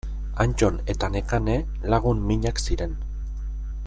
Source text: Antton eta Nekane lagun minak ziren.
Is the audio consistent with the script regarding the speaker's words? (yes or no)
yes